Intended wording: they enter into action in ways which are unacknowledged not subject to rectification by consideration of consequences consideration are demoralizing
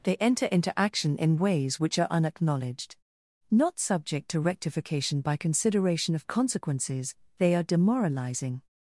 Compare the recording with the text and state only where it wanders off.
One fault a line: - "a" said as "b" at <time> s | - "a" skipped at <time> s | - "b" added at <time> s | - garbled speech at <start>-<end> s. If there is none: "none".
- "consideration" said as "they" at 7.4 s